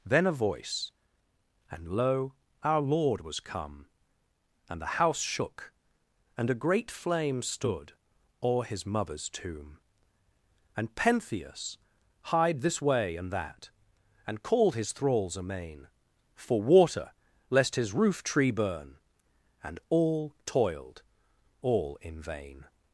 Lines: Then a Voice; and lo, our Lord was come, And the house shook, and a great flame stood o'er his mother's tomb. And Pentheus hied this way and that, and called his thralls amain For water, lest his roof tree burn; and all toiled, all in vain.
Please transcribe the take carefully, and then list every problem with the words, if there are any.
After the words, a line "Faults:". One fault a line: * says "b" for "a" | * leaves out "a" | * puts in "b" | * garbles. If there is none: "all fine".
Then a Voice; and lo, our Lord was come, And the house shook, and a great flame stood o'er his mother's tomb. And Pentheus hied this way and that, and called his thralls amain For water, lest his roof tree burn; and all toiled, all in vain.
Faults:
all fine